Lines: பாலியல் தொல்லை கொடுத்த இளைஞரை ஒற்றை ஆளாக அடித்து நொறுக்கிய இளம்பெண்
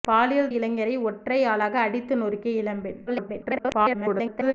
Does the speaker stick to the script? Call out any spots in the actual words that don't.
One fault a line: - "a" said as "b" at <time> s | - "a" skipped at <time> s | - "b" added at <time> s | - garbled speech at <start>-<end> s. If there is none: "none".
- "தொல்லை கொடுத்த" skipped at 0.5 s
- garbled speech at 3.1-4.5 s